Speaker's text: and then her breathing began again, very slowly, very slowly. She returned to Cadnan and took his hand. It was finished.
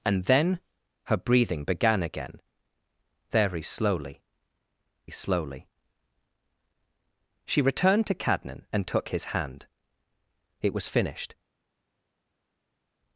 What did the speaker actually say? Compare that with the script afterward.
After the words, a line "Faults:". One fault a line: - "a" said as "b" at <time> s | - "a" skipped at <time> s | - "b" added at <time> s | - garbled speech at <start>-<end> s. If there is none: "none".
and then her breathing began again, very slowly, slowly. She returned to Cadnan and took his hand. It was finished.
Faults:
- "very" skipped at 4.2 s